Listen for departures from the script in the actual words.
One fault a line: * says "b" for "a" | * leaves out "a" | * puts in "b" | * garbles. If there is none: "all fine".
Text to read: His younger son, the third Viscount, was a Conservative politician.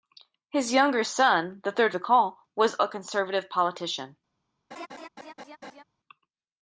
all fine